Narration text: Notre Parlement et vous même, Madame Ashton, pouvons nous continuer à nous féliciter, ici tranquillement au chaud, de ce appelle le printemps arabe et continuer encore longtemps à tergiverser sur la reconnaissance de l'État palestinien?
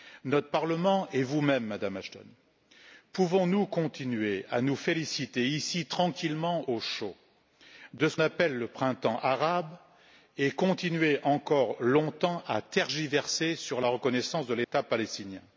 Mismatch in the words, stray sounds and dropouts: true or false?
true